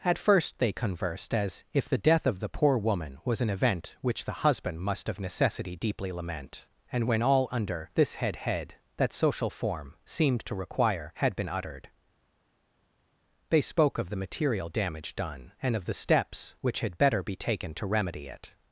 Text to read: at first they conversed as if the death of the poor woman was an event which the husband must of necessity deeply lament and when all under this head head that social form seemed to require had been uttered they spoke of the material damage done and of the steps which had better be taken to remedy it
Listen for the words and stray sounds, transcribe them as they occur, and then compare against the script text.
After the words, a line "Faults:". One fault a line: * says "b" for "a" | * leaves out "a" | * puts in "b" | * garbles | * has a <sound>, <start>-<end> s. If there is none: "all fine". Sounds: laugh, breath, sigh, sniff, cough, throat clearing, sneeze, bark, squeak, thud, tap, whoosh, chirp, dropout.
at first they conversed as if the death of the poor woman was an event which the husband must of necessity deeply lament and when all under this head head that social form seemed to require had been uttered they spoke of the material damage done and of the steps which had better be taken to remedy it
Faults:
all fine